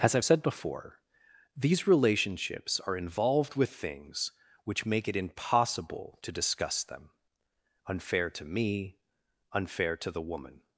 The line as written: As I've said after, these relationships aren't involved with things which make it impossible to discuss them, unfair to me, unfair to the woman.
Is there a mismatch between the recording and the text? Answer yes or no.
yes